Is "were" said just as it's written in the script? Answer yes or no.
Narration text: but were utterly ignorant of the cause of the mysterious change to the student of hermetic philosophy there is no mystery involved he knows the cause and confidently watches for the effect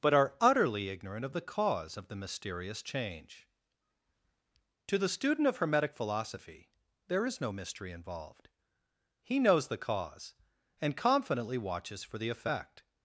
no